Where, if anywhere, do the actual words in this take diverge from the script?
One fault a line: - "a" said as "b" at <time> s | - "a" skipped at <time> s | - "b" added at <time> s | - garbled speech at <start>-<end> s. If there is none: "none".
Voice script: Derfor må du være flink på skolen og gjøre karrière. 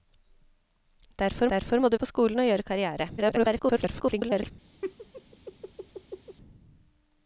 - "derfor" added at 1.5 s
- "være flink" skipped at 2.0 s
- garbled speech at 3.2-4.5 s